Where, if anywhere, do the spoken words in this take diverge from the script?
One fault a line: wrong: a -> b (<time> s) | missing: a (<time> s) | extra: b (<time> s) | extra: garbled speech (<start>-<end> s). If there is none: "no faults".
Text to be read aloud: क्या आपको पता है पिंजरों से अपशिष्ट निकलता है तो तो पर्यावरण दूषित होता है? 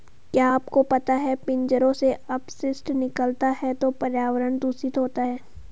missing: तो (3.9 s)